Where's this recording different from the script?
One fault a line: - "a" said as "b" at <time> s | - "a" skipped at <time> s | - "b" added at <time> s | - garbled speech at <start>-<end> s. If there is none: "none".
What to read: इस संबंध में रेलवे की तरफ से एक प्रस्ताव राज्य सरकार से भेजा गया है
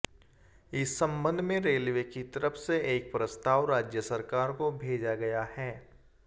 - "से" said as "को" at 4.5 s